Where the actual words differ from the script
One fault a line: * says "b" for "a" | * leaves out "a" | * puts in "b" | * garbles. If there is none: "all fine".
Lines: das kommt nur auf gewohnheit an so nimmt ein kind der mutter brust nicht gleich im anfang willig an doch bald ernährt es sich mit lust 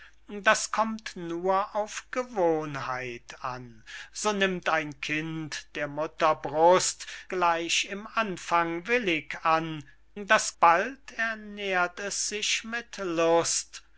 * leaves out "nicht"
* says "das" for "doch"